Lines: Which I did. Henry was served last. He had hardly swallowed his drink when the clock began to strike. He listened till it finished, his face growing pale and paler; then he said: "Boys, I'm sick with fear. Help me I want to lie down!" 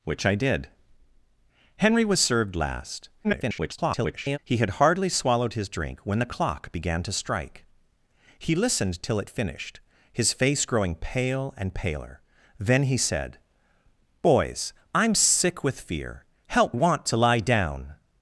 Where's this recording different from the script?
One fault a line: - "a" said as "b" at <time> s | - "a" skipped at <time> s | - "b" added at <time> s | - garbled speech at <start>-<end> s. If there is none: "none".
- garbled speech at 3.2-4.4 s
- "me I" skipped at 16.7 s